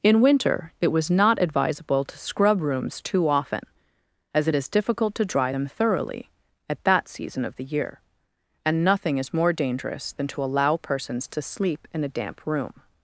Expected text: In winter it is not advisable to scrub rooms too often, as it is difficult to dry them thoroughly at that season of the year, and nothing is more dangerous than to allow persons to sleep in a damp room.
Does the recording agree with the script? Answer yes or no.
no